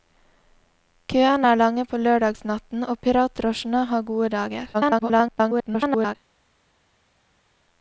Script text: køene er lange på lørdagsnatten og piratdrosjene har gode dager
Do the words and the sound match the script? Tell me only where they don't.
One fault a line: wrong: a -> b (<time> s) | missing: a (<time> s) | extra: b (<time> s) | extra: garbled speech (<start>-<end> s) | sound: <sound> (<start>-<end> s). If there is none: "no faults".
extra: garbled speech (4.7-6.1 s)